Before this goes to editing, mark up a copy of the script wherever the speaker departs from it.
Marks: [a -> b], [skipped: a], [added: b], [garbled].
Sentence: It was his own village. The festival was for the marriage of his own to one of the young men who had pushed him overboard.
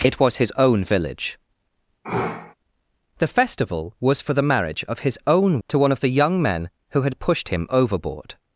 It was his own village. The festival was for the marriage of his own to one of the young men who had pushed him overboard.